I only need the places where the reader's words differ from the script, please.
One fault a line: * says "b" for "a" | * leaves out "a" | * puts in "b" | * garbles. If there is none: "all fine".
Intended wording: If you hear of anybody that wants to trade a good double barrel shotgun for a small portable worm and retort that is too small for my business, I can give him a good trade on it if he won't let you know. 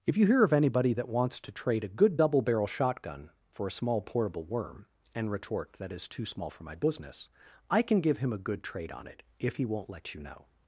all fine